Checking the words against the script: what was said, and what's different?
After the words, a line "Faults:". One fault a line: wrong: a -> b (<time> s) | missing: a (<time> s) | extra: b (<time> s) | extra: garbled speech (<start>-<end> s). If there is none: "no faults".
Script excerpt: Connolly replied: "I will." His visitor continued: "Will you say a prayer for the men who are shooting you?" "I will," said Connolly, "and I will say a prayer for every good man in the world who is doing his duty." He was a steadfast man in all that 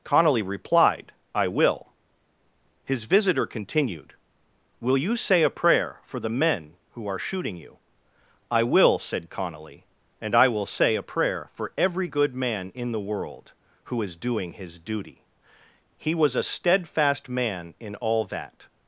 Connolly replied: "I will." His visitor continued: "Will you say a prayer for the men who are shooting you?" "I will," said Connolly, "and I will say a prayer for every good man in the world who is doing his duty." He was a steadfast man in all that
Faults:
no faults